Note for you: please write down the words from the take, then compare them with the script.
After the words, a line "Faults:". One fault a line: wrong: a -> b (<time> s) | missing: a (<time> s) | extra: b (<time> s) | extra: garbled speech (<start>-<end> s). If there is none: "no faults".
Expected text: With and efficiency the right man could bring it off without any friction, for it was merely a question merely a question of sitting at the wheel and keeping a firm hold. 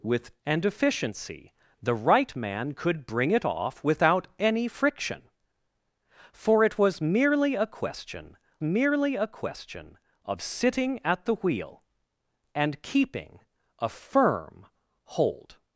With and efficiency the right man could bring it off without any friction, for it was merely a question merely a question of sitting at the wheel and keeping a firm hold.
Faults:
no faults